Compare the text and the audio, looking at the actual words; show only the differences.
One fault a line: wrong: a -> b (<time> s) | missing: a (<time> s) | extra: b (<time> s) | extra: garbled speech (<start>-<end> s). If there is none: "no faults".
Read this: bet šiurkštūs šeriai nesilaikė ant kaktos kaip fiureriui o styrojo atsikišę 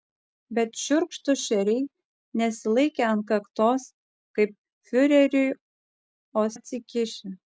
missing: styrojo (6.5 s)